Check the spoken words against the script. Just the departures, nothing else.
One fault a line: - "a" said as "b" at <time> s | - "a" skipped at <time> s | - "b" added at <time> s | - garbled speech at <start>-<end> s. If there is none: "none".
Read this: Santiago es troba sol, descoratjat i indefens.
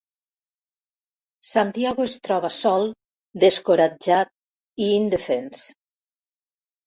none